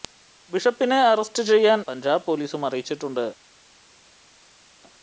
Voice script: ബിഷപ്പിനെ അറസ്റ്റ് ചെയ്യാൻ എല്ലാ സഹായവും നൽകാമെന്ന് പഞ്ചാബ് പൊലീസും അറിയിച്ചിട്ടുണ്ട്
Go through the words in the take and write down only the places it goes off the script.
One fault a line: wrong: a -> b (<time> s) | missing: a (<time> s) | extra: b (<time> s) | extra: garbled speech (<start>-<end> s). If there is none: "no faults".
missing: എല്ലാ സഹായവും നൽകാമെന്ന് (1.8 s)